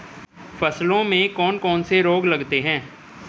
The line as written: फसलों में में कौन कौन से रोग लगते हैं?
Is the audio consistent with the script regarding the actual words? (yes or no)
no